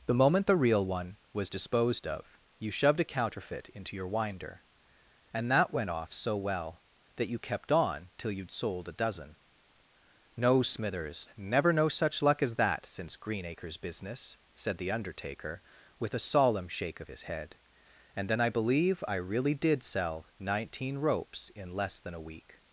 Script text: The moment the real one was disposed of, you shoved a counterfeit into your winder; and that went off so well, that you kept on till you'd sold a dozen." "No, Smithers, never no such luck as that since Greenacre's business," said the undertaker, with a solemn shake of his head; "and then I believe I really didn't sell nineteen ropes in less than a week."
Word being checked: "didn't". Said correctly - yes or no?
no